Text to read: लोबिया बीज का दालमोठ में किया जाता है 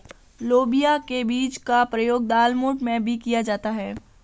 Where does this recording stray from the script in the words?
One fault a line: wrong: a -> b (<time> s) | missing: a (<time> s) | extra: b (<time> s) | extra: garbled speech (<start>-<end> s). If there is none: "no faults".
extra: के (1.1 s)
extra: प्रयोग (1.9 s)
extra: भी (3.0 s)